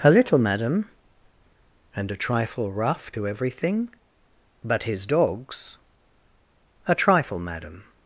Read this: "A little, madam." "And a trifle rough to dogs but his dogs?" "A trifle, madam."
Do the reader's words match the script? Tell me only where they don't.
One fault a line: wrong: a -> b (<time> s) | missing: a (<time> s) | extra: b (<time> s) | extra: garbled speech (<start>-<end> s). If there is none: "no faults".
wrong: dogs -> everything (3.3 s)